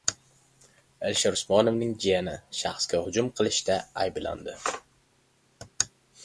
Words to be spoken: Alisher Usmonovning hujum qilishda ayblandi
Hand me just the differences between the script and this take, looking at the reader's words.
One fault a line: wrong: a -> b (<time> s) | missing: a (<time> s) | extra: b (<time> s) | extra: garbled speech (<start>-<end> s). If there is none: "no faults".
extra: jiyani shaxsga (2.0 s)